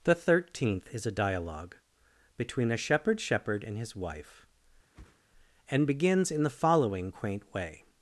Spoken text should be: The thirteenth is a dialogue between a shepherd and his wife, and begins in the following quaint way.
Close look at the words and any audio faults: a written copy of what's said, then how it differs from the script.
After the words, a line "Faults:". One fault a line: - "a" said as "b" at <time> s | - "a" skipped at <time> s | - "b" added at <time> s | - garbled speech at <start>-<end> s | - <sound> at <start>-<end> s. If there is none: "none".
The thirteenth is a dialogue between a shepherd shepherd and his wife, and begins in the following quaint way.
Faults:
- "shepherd" added at 3.2 s
- whoosh at 4.9-5.2 s